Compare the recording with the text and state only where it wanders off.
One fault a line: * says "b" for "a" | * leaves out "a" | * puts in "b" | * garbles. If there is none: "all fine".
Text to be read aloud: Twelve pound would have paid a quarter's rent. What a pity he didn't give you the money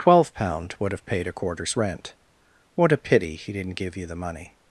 all fine